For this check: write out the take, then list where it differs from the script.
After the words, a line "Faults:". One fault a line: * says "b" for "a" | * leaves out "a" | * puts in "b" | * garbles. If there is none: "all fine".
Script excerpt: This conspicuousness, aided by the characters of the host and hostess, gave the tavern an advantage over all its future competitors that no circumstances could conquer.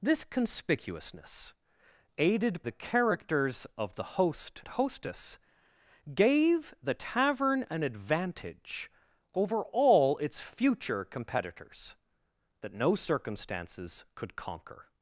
This conspicuousness, aided the characters of the host hostess, gave the tavern an advantage over all its future competitors that no circumstances could conquer.
Faults:
* leaves out "by"
* leaves out "and"